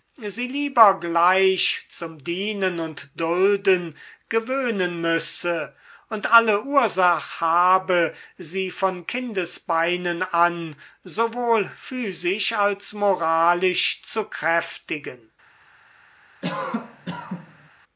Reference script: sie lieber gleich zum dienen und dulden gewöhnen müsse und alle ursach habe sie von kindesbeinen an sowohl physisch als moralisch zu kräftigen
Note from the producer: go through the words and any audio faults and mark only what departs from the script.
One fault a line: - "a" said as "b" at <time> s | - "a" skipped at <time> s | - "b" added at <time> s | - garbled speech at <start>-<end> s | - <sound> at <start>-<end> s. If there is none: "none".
- cough at 16.4-17.7 s